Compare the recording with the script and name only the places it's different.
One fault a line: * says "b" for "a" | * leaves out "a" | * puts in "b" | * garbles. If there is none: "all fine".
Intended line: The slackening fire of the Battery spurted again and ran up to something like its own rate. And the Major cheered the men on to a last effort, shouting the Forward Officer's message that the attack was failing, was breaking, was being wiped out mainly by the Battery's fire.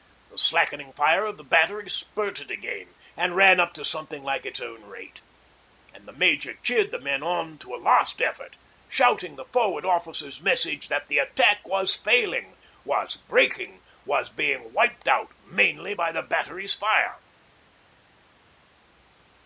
all fine